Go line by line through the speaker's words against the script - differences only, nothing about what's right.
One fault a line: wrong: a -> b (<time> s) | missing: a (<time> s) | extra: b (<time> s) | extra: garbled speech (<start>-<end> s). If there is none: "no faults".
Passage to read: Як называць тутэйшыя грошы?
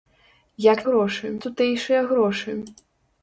wrong: называць -> грошы (0.9 s)